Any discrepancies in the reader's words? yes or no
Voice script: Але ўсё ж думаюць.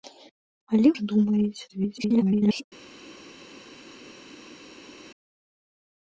yes